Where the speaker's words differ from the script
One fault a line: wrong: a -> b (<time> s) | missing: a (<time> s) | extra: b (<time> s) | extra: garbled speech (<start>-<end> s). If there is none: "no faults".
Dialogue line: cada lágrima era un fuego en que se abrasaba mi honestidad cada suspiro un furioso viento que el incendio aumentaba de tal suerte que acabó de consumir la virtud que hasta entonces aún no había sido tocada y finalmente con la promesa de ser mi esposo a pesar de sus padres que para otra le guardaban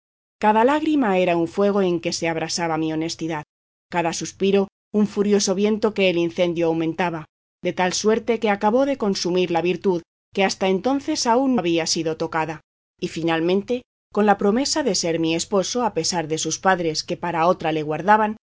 missing: no (11.6 s)